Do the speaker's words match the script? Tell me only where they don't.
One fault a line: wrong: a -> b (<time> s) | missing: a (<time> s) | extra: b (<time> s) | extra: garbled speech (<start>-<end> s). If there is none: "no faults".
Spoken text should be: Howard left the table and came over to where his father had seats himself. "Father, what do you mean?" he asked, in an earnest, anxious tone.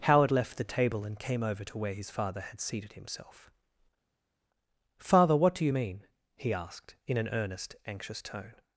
wrong: seats -> seated (2.6 s)